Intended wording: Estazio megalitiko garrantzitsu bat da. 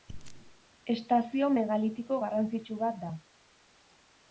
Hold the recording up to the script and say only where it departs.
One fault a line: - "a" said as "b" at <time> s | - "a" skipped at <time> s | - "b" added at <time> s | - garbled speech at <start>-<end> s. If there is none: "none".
none